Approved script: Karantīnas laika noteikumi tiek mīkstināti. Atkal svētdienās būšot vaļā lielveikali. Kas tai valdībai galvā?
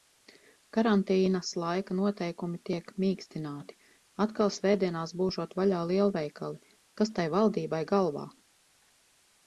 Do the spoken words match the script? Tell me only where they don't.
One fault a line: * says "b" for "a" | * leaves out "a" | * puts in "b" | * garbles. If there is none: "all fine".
all fine